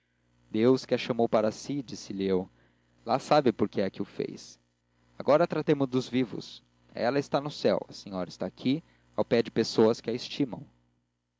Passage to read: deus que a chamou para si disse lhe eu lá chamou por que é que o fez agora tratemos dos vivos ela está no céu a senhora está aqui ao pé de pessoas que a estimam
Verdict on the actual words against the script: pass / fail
fail